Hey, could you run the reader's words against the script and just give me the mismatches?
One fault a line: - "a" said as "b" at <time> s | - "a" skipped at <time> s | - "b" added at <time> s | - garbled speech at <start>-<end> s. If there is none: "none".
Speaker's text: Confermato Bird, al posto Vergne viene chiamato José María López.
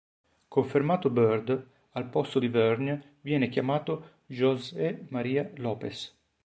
- "di" added at 2.4 s